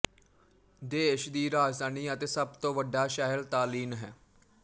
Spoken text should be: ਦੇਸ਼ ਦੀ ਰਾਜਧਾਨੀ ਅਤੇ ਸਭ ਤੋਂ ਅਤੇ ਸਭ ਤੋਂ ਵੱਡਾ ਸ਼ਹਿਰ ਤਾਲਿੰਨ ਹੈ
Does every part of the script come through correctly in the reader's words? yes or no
no